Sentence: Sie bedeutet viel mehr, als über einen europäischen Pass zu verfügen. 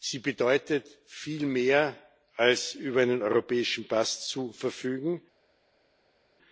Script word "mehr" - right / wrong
right